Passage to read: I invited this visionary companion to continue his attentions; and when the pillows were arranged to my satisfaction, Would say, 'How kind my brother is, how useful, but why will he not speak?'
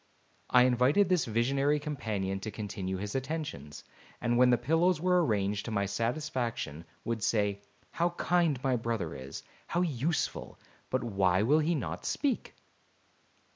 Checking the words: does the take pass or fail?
pass